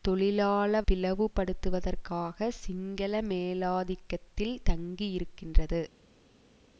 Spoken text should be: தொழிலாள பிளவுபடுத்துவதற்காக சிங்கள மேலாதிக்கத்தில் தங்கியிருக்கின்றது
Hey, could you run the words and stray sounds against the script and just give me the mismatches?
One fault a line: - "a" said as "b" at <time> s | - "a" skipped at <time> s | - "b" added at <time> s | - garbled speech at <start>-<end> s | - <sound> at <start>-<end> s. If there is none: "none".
none